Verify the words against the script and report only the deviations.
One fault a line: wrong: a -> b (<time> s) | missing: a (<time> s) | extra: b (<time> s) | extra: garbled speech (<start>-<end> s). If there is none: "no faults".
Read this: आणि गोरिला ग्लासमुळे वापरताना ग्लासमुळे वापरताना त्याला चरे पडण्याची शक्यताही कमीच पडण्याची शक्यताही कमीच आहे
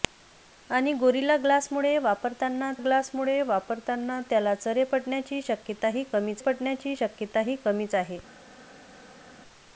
no faults